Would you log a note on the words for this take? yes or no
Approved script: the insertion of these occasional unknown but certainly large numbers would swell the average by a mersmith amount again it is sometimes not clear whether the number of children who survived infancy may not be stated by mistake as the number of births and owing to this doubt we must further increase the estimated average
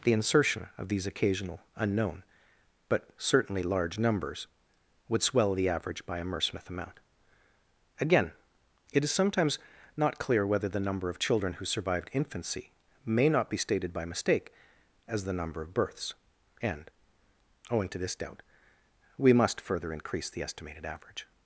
no